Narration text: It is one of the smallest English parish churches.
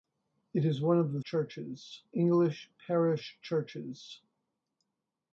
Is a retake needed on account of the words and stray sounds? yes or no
yes